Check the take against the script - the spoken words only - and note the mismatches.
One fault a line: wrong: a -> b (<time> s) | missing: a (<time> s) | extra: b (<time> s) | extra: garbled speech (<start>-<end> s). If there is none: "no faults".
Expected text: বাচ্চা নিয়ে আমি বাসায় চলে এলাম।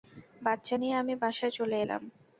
no faults